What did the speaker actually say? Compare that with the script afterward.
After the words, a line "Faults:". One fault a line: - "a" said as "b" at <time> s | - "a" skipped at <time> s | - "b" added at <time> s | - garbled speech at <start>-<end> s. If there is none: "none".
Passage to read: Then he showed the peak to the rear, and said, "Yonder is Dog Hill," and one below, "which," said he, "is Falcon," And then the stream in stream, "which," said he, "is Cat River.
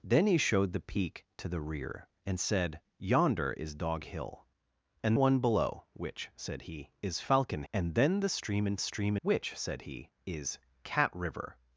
Then he showed the peak to the rear, and said, "Yonder is Dog Hill," and one below, "which," said he, "is Falcon," And then the stream in stream, "which," said he, "is Cat River.
Faults:
none